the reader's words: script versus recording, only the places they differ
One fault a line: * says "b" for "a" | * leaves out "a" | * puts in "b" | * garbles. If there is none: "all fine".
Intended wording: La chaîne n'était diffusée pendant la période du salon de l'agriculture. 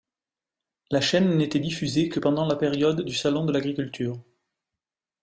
* puts in "que"